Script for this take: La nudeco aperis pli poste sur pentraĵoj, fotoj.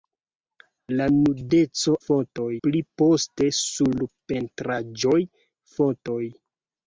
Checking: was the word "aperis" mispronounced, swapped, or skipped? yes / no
yes